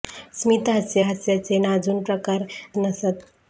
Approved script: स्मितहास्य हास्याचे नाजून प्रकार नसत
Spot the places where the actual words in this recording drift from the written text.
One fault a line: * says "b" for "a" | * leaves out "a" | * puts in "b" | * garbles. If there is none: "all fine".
all fine